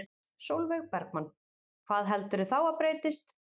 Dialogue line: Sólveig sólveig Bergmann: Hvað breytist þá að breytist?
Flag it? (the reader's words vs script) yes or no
yes